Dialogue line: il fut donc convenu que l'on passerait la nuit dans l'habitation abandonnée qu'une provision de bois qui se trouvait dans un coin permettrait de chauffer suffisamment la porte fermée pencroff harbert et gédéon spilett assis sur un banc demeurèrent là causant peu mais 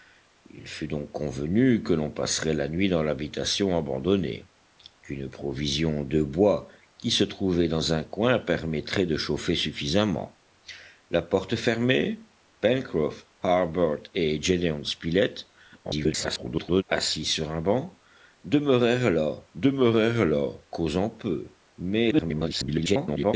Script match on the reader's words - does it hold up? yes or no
no